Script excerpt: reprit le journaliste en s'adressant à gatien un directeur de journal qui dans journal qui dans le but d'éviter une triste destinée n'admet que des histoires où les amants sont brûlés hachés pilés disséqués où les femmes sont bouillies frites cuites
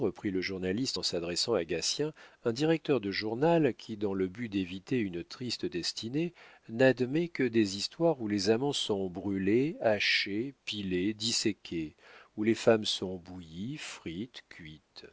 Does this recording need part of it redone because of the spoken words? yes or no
yes